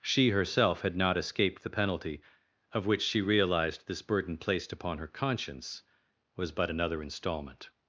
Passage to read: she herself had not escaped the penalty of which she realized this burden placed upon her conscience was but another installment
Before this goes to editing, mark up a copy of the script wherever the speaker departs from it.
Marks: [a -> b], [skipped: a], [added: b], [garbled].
she herself had not escaped the penalty of which she realized this burden placed upon her conscience was but another installment